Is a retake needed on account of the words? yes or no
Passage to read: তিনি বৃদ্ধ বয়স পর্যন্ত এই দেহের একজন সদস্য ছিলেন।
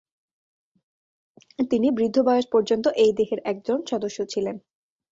no